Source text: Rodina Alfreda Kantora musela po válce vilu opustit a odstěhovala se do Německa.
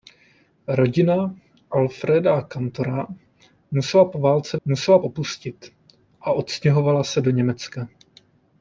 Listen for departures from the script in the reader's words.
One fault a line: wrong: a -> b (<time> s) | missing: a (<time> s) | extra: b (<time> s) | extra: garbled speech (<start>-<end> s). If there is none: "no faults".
wrong: vilu -> musela (4.6 s)